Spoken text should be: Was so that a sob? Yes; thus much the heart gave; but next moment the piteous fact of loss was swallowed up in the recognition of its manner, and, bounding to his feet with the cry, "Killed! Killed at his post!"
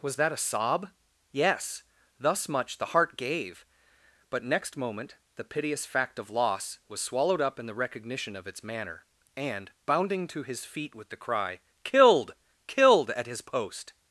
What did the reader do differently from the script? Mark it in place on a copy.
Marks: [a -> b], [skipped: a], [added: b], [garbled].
Was [skipped: so] that a sob? Yes; thus much the heart gave; but next moment the piteous fact of loss was swallowed up in the recognition of its manner, and, bounding to his feet with the cry, "Killed! Killed at his post!"